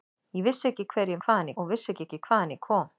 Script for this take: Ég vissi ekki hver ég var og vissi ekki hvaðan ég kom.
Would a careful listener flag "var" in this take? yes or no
yes